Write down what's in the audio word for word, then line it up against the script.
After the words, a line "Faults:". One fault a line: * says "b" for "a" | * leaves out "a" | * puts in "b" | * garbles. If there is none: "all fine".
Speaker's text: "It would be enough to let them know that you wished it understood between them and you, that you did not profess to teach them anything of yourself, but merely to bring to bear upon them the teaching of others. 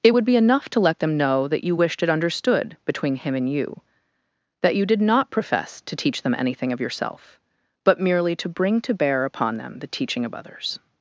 "It would be enough to let them know that you wished it understood between him and you, that you did not profess to teach them anything of yourself, but merely to bring to bear upon them the teaching of others.
Faults:
* says "him" for "them"